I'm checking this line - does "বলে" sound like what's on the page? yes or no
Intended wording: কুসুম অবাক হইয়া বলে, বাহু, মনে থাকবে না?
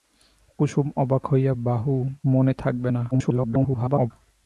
no